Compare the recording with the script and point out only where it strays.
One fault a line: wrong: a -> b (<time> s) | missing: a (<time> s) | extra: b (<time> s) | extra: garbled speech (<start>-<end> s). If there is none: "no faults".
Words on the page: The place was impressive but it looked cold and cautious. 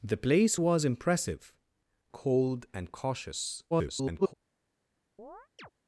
missing: but it looked (1.5 s)
extra: garbled speech (3.7-4.3 s)